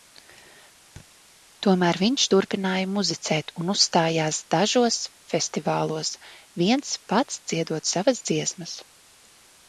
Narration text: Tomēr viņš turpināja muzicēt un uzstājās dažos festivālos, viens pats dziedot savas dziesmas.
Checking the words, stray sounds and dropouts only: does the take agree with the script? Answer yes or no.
no